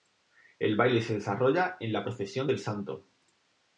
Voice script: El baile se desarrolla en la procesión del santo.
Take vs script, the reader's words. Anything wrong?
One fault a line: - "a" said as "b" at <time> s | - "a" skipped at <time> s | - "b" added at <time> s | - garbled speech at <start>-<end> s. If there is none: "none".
none